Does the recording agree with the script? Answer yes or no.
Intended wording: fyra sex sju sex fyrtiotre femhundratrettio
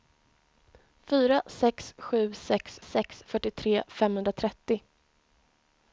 no